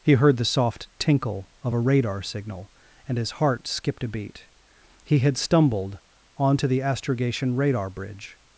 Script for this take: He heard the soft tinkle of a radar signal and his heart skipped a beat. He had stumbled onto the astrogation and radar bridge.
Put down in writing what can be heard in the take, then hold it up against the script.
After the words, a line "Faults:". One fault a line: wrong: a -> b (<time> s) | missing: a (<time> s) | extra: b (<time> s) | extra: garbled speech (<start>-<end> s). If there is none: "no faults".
He heard the soft tinkle of a radar signal and his heart skipped a beat. He had stumbled onto the astrogation radar bridge.
Faults:
missing: and (7.6 s)